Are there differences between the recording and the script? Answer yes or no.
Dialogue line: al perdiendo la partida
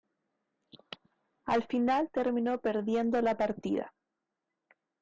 yes